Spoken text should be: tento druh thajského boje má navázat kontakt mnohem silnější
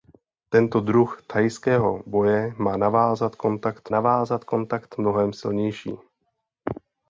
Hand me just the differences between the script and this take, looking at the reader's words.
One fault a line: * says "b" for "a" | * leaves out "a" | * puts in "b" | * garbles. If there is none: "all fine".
* puts in "navázat kontakt"